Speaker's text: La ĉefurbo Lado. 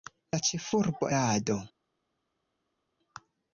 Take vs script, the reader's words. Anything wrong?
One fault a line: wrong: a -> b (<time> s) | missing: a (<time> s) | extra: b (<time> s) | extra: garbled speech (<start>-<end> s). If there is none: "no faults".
no faults